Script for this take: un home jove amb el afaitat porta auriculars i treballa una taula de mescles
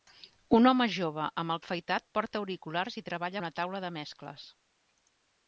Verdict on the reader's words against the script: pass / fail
pass